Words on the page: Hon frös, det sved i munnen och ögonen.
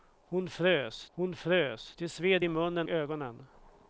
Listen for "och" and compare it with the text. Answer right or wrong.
wrong